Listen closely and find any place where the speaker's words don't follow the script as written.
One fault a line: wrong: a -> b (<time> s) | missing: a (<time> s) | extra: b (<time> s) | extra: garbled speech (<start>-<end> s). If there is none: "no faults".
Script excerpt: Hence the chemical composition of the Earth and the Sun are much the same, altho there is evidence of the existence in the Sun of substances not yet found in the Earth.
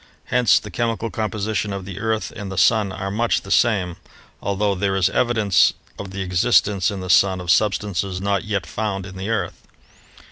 no faults